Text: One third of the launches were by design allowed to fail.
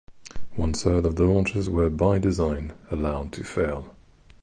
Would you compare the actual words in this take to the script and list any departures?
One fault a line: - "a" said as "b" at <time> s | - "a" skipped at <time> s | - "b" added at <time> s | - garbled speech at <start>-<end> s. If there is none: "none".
none